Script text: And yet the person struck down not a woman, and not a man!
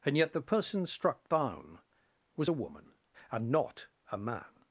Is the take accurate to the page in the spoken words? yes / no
no